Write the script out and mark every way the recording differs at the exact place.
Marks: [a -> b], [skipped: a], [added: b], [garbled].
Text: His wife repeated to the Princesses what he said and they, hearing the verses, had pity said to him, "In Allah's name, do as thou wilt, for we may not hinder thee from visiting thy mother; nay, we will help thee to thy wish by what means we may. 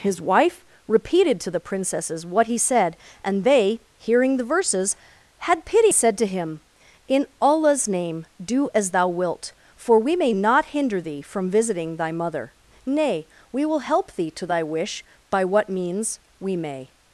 His wife repeated to the Princesses what he said and they, hearing the verses, had pity said to him, "In Allah's name, do as thou wilt, for we may not hinder thee from visiting thy mother; nay, we will help thee to thy wish by what means we may.